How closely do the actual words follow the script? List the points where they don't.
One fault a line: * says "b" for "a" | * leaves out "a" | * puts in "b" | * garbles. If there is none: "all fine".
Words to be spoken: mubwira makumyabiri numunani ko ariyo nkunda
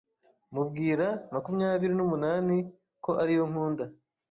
all fine